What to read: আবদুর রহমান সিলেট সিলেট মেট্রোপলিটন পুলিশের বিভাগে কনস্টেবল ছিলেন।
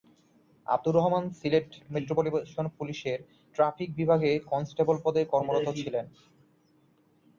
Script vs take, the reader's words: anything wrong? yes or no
yes